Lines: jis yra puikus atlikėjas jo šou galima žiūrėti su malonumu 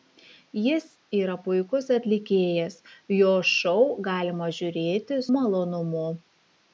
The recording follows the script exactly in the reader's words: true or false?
false